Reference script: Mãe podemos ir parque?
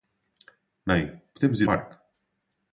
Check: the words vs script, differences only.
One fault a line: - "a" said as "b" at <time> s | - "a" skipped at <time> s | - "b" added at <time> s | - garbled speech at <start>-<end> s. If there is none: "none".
none